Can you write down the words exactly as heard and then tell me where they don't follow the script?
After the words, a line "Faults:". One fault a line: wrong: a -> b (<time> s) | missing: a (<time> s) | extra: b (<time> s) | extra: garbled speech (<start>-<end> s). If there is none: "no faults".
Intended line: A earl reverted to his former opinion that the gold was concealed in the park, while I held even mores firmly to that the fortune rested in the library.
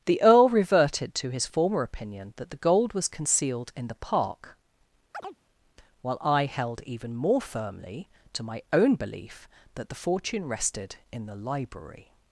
The earl reverted to his former opinion that the gold was concealed in the park, while I held even more firmly to my own belief that the fortune rested in the library.
Faults:
wrong: A -> The (0.1 s)
wrong: mores -> more (7.2 s)
extra: my own belief (8.4 s)